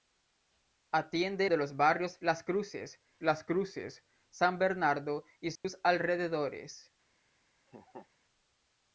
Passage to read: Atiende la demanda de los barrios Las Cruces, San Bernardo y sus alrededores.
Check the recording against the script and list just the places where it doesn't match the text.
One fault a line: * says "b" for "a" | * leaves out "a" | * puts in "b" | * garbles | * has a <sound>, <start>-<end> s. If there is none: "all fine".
* leaves out "la demanda"
* puts in "Las Cruces"
* has a dropout, 5.6-5.6 s
* has a laugh, 7.7-8.1 s